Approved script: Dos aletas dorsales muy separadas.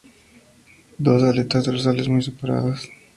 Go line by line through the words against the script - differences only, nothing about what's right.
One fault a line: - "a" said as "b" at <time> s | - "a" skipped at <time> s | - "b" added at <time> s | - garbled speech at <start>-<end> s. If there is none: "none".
none